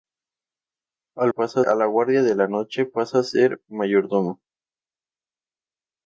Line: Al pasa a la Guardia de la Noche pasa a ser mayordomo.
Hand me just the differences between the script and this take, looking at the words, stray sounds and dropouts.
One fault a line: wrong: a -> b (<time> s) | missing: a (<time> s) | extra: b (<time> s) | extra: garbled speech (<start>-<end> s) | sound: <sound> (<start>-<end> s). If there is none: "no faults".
no faults